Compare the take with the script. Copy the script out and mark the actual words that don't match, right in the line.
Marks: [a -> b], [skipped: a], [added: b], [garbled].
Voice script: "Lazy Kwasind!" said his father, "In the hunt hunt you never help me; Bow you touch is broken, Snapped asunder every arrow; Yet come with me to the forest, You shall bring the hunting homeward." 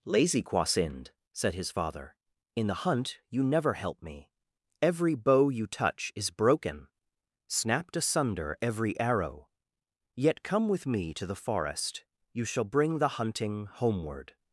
"Lazy Kwasind!" said his father, "In the hunt [skipped: hunt] you never help me; [added: Every] Bow you touch is broken, Snapped asunder every arrow; Yet come with me to the forest, You shall bring the hunting homeward."